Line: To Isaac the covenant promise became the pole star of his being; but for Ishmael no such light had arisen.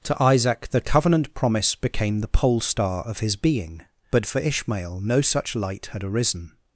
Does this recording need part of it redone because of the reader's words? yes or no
no